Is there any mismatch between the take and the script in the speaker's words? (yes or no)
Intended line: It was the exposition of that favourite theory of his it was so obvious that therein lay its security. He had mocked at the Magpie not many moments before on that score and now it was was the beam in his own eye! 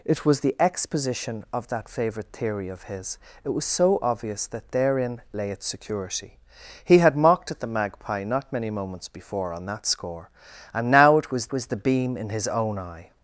no